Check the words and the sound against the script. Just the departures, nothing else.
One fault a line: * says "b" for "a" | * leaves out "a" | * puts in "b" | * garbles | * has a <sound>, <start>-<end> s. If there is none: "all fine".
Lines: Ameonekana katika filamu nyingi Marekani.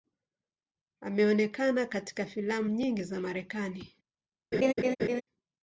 * puts in "za"
* has a laugh, 4.5-5.2 s